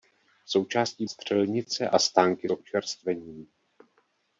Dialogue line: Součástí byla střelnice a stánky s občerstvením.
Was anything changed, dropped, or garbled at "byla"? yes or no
yes